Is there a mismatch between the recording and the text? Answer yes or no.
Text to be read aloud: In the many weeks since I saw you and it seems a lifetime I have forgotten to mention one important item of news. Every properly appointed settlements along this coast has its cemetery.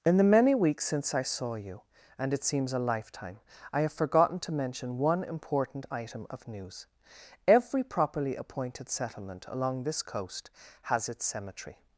yes